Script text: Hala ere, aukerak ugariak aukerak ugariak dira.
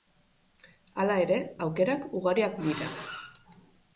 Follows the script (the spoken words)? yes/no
no